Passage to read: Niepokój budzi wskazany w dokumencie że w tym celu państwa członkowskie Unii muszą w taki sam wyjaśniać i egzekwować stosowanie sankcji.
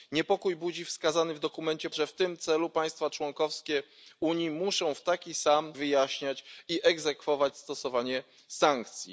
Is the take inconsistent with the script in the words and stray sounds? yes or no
no